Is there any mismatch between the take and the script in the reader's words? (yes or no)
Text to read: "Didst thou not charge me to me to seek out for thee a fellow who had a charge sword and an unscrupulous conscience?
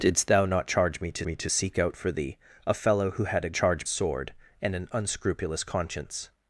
no